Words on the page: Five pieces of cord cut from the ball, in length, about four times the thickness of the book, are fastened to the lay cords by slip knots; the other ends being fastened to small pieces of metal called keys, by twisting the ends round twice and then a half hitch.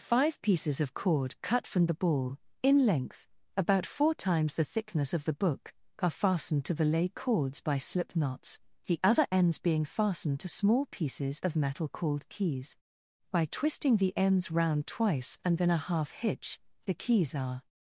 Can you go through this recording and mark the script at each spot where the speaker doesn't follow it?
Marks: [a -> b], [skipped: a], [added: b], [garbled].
Five pieces of cord cut from the ball, in length, about four times the thickness of the book, are fastened to the lay cords by slip knots; the other ends being fastened to small pieces of metal called keys, by twisting the ends round twice and then a half hitch. [added: The keys are]